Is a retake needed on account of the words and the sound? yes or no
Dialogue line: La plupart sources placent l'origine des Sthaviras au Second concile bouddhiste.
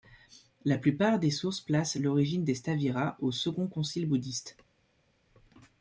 yes